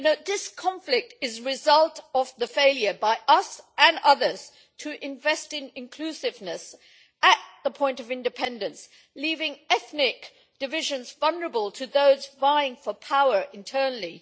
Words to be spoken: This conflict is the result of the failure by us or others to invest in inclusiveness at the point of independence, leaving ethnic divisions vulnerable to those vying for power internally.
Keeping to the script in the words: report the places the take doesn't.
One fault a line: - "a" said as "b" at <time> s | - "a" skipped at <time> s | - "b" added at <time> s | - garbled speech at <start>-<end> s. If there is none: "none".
- "or" said as "and" at 3.8 s